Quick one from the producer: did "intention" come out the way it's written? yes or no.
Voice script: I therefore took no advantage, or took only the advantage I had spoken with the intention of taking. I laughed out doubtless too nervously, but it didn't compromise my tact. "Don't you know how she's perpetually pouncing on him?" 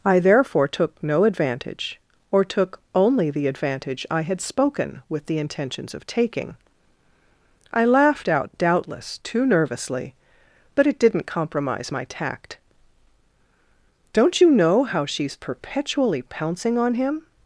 no